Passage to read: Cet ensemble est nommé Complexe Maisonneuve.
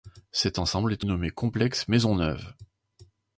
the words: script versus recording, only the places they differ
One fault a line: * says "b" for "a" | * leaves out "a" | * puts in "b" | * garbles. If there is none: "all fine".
all fine